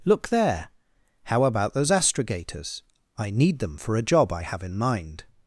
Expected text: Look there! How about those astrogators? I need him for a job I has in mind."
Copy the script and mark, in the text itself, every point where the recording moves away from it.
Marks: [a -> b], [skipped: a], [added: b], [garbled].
Look there! How about those astrogators? I need [him -> them] for a job I [has -> have] in mind."